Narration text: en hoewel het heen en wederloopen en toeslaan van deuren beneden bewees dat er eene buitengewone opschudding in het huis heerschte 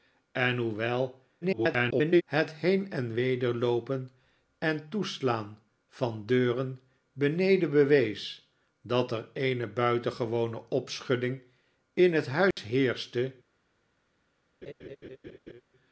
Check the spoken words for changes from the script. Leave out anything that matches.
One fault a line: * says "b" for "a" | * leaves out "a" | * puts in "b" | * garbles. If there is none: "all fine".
* garbles